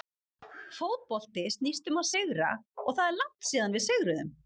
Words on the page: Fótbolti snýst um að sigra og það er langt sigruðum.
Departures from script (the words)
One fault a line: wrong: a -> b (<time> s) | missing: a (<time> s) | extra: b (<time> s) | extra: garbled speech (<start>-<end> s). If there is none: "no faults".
extra: síðan við (3.5 s)